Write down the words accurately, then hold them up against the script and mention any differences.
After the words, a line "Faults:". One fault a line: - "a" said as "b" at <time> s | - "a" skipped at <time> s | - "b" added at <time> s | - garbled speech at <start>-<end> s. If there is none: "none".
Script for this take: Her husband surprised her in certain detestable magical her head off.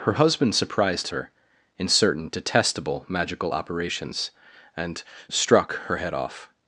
Her husband surprised her in certain detestable magical operations and struck her head off.
Faults:
- "operations and struck" added at 3.5 s